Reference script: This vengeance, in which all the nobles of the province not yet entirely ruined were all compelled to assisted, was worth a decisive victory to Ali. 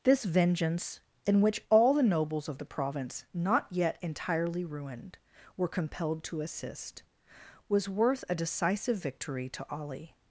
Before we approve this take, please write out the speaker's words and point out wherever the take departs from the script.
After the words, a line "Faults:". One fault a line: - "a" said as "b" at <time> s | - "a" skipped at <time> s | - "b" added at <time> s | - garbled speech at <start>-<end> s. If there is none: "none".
This vengeance, in which all the nobles of the province not yet entirely ruined were compelled to assist, was worth a decisive victory to Ali.
Faults:
- "all" skipped at 5.7 s
- "assisted" said as "assist" at 6.4 s